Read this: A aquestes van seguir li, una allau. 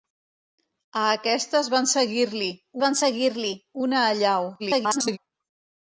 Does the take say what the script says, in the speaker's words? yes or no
no